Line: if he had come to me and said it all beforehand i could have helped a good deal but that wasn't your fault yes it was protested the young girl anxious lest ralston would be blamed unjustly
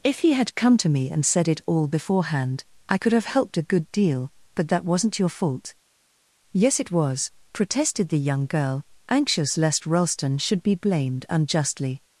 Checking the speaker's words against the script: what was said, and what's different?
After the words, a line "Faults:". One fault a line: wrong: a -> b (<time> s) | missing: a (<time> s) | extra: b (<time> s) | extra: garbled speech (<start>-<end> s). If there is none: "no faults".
if he had come to me and said it all beforehand i could have helped a good deal but that wasn't your fault yes it was protested the young girl anxious lest ralston should be blamed unjustly
Faults:
wrong: would -> should (10.4 s)